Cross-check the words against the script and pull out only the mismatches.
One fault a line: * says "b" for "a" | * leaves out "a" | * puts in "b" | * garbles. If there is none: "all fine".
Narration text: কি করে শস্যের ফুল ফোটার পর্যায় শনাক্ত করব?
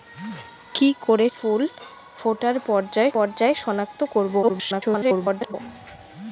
* leaves out "শস্যের"
* puts in "পর্যায়"
* garbles